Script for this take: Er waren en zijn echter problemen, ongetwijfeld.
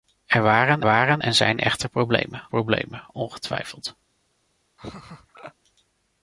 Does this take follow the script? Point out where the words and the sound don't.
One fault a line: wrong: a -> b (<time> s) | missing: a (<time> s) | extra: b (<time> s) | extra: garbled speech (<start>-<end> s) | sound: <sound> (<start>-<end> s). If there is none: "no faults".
extra: waren (0.8 s)
extra: problemen (2.4 s)
sound: laugh (4.8-5.5 s)